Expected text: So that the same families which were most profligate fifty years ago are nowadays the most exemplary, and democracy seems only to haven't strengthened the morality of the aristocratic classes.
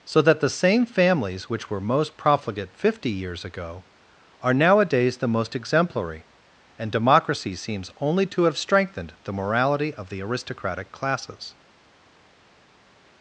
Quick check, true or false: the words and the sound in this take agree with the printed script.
false